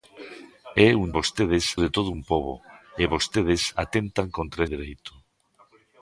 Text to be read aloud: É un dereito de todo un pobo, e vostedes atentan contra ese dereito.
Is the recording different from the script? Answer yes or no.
yes